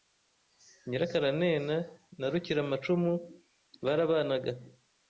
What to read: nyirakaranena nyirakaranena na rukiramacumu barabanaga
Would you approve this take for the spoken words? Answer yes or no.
no